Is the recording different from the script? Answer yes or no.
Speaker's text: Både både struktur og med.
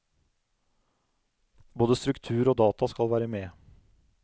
yes